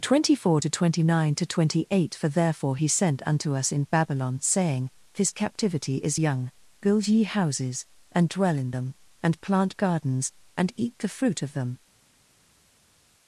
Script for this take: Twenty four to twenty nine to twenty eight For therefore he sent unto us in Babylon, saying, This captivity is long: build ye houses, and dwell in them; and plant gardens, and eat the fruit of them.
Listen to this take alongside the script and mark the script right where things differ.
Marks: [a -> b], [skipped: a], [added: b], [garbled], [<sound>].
Twenty four to twenty nine to twenty eight For therefore he sent unto us in Babylon, saying, This captivity is [long: -> young] build ye houses, and dwell in them; and plant gardens, and eat the fruit of them.